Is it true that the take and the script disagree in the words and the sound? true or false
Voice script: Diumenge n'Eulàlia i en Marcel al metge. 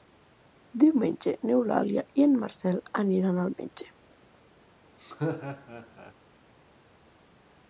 true